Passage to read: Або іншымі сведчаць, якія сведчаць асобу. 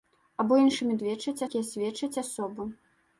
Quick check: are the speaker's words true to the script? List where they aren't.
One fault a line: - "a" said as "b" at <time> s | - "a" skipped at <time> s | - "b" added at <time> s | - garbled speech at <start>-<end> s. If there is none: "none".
none